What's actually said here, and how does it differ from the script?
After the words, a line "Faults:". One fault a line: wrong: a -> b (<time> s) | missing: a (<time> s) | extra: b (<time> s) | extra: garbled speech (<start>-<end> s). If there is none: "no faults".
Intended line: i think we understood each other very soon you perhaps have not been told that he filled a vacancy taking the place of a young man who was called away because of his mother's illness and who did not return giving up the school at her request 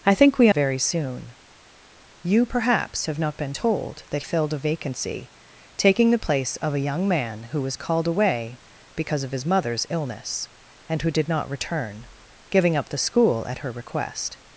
i think we very soon you perhaps have not been told that filled a vacancy taking the place of a young man who was called away because of his mother's illness and who did not return giving up the school at her request
Faults:
missing: understood each other (0.5 s)
missing: he (4.2 s)